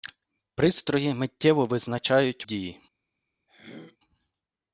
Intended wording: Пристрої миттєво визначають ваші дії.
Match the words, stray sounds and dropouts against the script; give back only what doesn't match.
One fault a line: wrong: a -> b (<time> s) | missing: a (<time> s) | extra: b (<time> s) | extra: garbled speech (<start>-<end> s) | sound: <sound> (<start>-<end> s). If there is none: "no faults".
missing: ваші (2.5 s)
sound: throat clearing (3.5-4.0 s)